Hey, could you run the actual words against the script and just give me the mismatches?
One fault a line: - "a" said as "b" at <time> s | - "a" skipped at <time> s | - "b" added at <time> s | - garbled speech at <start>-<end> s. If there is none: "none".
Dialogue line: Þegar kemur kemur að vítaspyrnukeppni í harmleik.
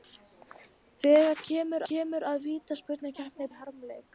none